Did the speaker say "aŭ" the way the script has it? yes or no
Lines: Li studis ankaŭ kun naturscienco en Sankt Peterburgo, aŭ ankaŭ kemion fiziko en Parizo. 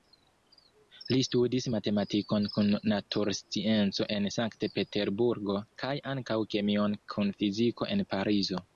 no